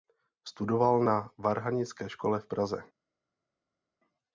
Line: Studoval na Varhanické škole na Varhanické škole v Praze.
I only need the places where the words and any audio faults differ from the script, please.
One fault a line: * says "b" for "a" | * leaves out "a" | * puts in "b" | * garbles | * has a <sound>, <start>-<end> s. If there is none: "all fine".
* leaves out "na Varhanické škole"